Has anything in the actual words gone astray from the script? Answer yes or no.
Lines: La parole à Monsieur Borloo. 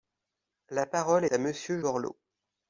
no